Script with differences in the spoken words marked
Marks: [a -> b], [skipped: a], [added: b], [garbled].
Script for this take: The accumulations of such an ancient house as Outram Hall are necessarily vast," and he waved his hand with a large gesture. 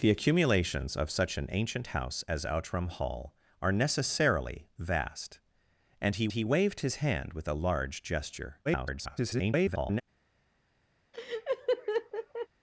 The accumulations of such an ancient house as Outram Hall are necessarily vast," and he [added: he] waved his hand with a large gesture. [garbled]